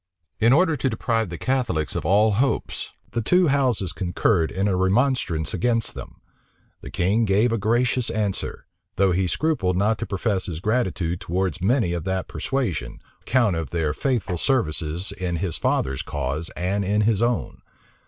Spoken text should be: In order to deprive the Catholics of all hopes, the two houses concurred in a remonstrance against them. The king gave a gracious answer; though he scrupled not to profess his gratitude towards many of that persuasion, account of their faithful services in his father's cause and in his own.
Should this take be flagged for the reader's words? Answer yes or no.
no